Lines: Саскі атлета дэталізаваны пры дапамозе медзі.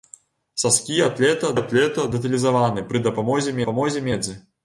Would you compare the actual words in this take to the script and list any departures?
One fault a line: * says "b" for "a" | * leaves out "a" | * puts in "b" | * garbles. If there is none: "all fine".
* puts in "атлета"
* puts in "дапамозе"